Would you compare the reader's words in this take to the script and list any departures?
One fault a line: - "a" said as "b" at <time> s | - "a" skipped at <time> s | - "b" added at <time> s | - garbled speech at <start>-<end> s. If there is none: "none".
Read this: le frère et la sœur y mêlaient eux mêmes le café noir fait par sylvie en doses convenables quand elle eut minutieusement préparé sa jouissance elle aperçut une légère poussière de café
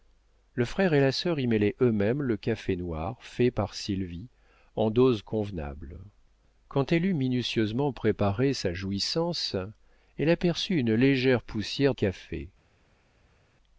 - "de" skipped at 11.9 s